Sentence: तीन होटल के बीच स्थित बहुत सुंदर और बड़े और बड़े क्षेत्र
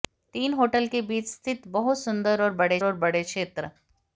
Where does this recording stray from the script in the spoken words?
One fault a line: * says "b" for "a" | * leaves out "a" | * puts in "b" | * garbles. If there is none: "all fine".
all fine